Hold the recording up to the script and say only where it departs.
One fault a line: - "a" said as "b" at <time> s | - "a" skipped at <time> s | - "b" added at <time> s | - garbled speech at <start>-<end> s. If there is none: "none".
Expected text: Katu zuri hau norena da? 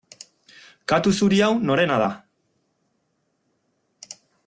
none